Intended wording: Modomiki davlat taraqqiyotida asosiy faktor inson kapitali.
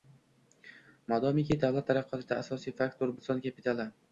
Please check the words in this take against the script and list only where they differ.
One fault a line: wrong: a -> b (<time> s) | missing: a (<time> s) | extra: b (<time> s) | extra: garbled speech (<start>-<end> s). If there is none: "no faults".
no faults